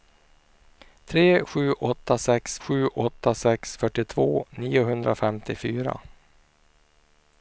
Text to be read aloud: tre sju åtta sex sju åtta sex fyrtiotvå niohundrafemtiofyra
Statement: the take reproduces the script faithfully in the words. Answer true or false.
true